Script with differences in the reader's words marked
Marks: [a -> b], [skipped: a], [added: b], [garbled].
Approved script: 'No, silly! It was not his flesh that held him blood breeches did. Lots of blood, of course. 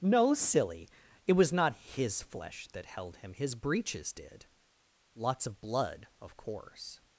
'No, silly! It was not his flesh that held him [blood -> his] breeches did. Lots of blood, of course.